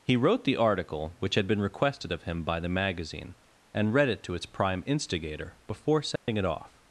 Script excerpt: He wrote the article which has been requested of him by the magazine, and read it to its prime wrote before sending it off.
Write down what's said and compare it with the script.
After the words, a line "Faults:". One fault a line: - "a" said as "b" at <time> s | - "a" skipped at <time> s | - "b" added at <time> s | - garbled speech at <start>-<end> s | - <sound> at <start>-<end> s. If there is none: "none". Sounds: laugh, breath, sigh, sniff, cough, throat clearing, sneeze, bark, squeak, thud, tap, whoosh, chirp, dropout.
He wrote the article which had been requested of him by the magazine, and read it to its prime instigator before sending it off.
Faults:
- "has" said as "had" at 1.4 s
- "wrote" said as "instigator" at 4.8 s
- dropout at 6.2-6.3 s